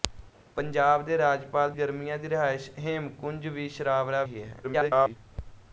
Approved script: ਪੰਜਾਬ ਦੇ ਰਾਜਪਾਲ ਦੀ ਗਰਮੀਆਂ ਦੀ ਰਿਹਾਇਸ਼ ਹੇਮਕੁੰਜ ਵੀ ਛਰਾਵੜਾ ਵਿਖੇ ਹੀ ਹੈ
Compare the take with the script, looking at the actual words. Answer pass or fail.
fail